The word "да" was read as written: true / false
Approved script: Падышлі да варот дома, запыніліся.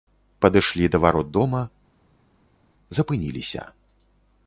true